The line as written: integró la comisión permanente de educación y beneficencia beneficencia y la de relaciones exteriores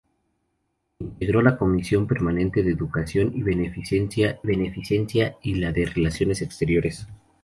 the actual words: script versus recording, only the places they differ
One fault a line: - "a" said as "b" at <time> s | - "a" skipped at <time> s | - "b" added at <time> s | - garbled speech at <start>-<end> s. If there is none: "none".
none